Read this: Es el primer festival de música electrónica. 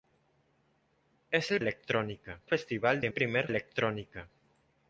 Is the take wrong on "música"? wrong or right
wrong